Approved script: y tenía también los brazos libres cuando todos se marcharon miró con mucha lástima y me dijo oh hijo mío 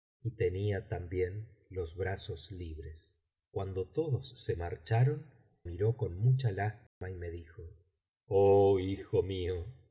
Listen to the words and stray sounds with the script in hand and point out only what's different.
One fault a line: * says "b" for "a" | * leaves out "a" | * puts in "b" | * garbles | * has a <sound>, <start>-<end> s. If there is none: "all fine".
* has a dropout, 6.9-7.0 s